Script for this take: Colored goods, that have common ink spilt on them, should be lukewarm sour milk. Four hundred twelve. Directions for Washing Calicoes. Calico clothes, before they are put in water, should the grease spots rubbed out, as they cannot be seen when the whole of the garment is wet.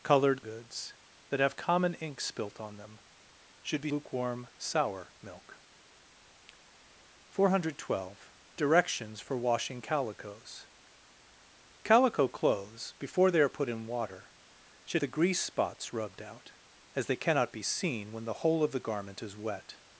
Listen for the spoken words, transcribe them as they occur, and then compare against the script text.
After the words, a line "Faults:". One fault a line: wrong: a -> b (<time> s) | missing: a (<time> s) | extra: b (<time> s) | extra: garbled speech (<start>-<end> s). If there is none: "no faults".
Colored goods, that have common ink spilt on them, should be lukewarm sour milk. Four hundred twelve. Directions for Washing Calicoes. Calico clothes, before they are put in water, should the grease spots rubbed out, as they cannot be seen when the whole of the garment is wet.
Faults:
no faults